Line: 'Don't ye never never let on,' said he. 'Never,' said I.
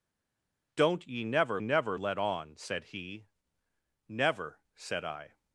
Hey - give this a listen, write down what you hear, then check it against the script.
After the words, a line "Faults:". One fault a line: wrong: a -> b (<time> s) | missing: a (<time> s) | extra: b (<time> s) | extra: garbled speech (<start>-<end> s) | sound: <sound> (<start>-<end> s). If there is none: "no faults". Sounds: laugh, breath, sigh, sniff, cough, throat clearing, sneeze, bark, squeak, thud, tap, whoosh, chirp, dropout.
'Don't ye never never let on,' said he. 'Never,' said I.
Faults:
no faults